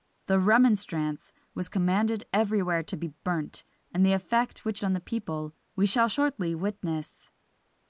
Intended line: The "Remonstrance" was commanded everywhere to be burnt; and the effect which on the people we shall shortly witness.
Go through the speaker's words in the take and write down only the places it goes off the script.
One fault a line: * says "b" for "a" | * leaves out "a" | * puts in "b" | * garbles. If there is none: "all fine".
all fine